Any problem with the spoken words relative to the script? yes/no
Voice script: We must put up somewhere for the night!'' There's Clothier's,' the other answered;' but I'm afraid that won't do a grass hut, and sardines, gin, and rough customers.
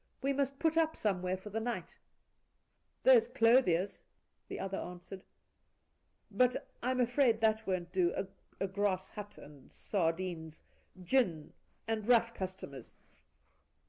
no